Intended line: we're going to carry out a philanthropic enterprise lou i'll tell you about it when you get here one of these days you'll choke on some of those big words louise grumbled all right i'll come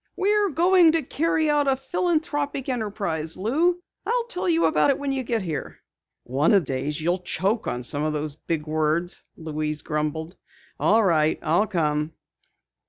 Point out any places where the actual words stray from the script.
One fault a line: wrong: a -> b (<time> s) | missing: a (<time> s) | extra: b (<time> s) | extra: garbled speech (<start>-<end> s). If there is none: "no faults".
missing: these (6.6 s)